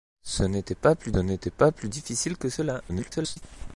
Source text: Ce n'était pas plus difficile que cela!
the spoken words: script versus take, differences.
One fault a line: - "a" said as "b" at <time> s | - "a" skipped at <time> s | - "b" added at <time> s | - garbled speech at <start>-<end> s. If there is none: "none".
- "n'était pas plus" added at 1.2 s
- garbled speech at 2.9-3.4 s